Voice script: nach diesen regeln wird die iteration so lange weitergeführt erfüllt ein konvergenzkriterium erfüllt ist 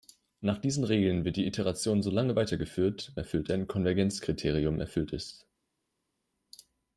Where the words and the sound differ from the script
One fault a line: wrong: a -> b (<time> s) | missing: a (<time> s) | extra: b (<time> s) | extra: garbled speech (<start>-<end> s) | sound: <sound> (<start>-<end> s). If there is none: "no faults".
no faults